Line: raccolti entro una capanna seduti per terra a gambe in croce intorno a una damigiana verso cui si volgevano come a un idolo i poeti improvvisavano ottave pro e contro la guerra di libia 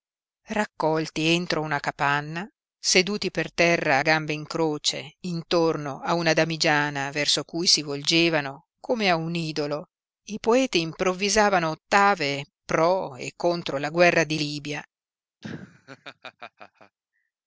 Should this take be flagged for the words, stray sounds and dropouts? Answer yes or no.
yes